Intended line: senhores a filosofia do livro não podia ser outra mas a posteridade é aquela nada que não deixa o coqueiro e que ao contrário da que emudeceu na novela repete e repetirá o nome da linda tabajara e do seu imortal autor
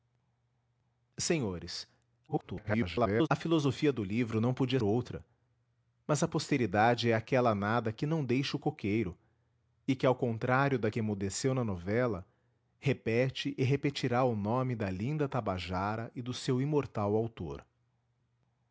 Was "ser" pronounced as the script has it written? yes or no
no